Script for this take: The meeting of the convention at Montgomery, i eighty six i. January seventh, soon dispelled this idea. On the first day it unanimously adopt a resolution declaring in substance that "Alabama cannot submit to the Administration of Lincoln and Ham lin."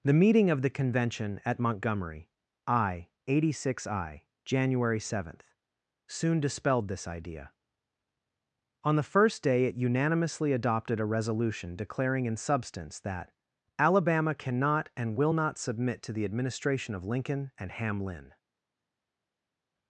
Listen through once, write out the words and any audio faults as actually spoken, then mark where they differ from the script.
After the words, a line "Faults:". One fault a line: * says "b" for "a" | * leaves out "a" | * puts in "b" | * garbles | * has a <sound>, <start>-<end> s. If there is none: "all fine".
The meeting of the convention at Montgomery, i eighty six i. January seventh, soon dispelled this idea. On the first day it unanimously adopted a resolution declaring in substance that "Alabama cannot and will not submit to the Administration of Lincoln and Ham lin."
Faults:
* says "adopted" for "adopt"
* puts in "and will not"